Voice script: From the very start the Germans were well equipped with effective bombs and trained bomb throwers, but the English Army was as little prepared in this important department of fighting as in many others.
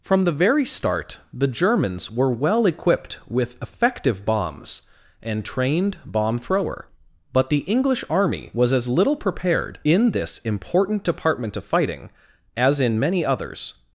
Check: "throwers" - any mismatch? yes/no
yes